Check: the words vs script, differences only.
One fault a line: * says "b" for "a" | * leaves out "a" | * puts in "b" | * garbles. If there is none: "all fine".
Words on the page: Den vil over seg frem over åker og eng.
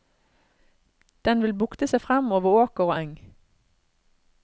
* says "bukte" for "over"